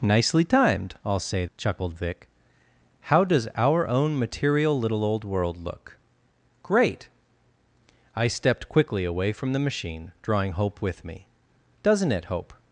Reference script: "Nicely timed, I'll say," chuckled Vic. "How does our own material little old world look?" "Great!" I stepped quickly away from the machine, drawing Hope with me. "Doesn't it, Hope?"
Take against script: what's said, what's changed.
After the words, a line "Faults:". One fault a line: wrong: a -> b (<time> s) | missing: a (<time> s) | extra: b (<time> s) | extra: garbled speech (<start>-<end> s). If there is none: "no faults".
"Nicely timed, I'll say," chuckled Vic. "How does our own material little old world look?" "Great!" I stepped quickly away from the machine, drawing Hope with me. "Doesn't it, Hope?"
Faults:
no faults